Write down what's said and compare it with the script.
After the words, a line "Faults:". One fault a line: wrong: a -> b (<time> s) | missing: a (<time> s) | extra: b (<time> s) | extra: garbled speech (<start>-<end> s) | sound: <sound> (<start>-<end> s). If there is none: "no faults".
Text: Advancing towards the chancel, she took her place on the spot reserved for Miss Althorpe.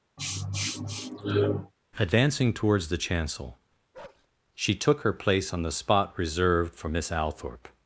Advancing towards the chancel, she took her place on the spot reserved for Miss Althorpe.
Faults:
sound: sniff (0.2-1.7 s)
sound: bark (3.9-4.3 s)